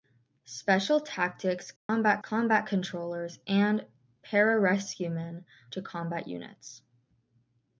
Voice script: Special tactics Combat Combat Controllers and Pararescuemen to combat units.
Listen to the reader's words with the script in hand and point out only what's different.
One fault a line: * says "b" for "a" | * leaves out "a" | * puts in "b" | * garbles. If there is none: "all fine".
all fine